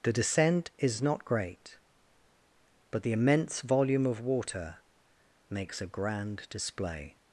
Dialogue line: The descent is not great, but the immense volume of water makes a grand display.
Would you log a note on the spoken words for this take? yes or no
no